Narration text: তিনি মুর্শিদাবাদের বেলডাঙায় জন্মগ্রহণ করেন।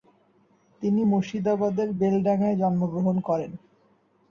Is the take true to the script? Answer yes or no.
yes